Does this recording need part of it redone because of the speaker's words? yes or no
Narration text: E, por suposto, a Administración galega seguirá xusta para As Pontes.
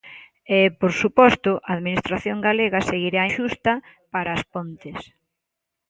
no